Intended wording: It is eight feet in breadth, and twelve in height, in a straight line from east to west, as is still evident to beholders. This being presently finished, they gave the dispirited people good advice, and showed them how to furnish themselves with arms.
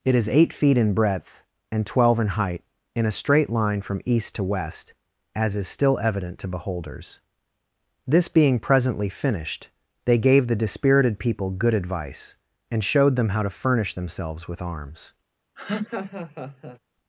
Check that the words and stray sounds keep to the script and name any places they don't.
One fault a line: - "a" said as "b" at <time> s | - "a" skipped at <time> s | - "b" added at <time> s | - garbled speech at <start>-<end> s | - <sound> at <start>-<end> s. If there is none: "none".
- laugh at 15.6-16.8 s